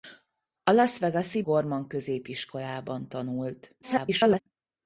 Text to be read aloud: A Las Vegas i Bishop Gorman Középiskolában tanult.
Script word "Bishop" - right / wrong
wrong